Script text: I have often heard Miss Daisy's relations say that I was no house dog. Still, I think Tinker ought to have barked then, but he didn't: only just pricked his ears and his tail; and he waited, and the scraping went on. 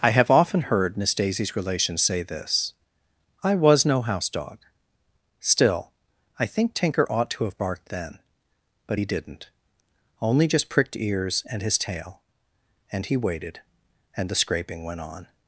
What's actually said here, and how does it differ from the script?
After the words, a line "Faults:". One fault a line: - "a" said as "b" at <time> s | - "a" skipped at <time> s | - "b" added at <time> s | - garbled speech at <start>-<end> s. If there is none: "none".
I have often heard Miss Daisy's relations say this I was no house dog. Still, I think Tinker ought to have barked then, but he didn't: only just pricked ears and his tail; and he waited, and the scraping went on.
Faults:
- "that" said as "this" at 2.2 s
- "his" skipped at 11.0 s